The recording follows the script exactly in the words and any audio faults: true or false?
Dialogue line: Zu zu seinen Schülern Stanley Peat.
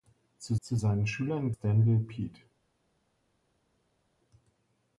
true